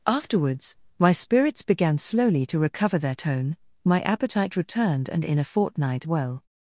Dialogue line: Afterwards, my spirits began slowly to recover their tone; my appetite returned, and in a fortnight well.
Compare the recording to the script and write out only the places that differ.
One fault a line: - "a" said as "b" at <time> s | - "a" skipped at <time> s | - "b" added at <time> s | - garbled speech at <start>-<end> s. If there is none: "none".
none